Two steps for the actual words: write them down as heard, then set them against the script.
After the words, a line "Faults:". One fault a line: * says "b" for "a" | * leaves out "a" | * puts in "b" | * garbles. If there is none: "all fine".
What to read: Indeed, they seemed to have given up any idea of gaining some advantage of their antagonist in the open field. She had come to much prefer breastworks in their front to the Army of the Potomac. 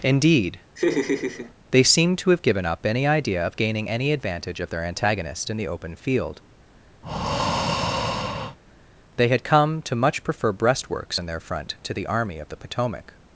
Indeed, they seemed to have given up any idea of gaining any advantage of their antagonist in the open field. They had come to much prefer breastworks in their front to the Army of the Potomac.
Faults:
* says "any" for "some"
* says "They" for "She"